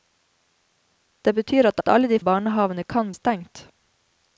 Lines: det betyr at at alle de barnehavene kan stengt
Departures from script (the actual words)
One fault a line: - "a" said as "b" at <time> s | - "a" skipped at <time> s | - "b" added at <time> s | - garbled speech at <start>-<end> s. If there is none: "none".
none